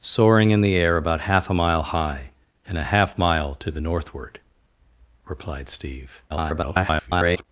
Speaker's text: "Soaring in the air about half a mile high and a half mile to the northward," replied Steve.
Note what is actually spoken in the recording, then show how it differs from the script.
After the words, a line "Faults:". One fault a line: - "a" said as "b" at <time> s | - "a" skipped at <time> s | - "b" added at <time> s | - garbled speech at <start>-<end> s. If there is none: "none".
"Soaring in the air about half a mile high and a half mile to the northward," replied Steve. [garbled]
Faults:
- garbled speech at 6.3-7.4 s